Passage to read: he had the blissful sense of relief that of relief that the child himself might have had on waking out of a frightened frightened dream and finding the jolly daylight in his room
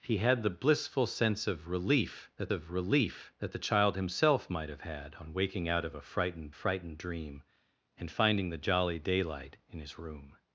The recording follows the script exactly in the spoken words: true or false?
true